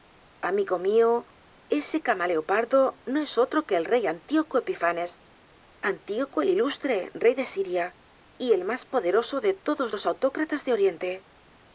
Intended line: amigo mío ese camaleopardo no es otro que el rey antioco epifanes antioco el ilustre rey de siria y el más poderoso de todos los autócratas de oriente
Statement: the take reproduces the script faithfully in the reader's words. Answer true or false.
true